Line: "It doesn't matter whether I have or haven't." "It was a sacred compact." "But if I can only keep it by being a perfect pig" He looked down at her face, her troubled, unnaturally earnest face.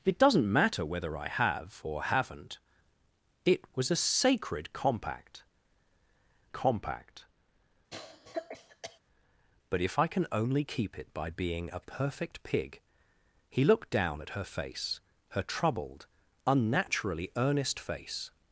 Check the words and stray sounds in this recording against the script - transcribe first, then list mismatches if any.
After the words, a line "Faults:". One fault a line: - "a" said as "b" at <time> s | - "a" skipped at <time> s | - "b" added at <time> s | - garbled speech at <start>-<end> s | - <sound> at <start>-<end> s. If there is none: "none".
"It doesn't matter whether I have or haven't." "It was a sacred compact compact." "But if I can only keep it by being a perfect pig" He looked down at her face, her troubled, unnaturally earnest face.
Faults:
- "compact" added at 6.5 s
- cough at 7.9-9.0 s